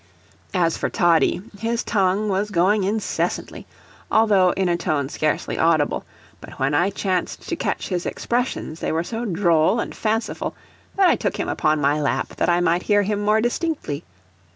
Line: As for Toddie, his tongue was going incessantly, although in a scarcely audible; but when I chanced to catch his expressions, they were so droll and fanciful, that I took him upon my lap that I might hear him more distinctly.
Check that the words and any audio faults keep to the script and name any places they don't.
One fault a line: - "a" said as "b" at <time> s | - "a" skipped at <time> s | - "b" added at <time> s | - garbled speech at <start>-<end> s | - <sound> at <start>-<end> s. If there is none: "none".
- "tone" added at 4.8 s